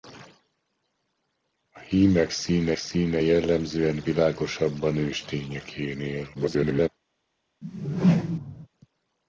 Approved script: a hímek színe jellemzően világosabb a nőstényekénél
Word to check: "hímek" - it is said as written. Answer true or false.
true